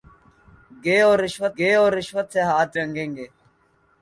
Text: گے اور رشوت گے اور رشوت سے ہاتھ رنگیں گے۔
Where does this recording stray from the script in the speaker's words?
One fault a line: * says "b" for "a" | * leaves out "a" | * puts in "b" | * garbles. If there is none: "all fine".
all fine